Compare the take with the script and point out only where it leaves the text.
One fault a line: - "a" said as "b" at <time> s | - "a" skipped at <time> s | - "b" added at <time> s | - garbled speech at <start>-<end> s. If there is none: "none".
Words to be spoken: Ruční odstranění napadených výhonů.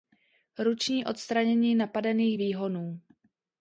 none